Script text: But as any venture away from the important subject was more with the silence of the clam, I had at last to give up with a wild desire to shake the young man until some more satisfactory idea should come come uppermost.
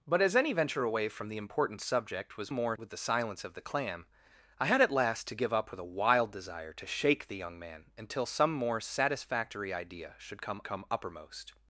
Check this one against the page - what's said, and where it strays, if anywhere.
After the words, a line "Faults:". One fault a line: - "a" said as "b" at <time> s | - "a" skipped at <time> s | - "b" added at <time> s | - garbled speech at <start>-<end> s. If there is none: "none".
But as any venture away from the important subject was more with the silence of the clam, I had at last to give up with a wild desire to shake the young man until some more satisfactory idea should come come uppermost.
Faults:
none